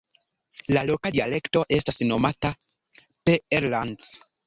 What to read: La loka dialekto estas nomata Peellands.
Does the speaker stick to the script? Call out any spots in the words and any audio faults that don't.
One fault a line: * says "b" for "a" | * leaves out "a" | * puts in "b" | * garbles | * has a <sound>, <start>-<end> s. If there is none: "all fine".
all fine